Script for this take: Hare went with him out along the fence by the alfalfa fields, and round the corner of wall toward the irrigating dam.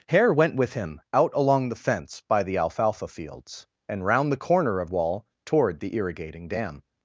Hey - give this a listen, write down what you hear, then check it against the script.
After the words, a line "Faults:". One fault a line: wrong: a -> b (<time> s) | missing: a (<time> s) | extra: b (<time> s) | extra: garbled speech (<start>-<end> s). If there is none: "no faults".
Hare went with him out along the fence by the alfalfa fields, and round the corner of wall toward the irrigating dam.
Faults:
no faults